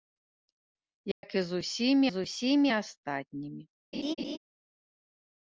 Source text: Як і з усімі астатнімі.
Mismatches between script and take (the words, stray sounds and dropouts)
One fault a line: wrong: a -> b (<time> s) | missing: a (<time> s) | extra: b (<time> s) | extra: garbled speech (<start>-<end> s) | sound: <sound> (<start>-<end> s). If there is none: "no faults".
sound: dropout (1.1-1.2 s)
extra: з усімі (2.1 s)
sound: laugh (3.9-4.4 s)